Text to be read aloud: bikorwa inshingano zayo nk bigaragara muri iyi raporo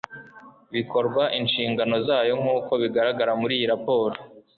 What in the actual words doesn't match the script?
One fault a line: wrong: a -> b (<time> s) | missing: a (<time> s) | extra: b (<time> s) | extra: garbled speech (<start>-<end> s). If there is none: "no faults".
extra: uko (2.6 s)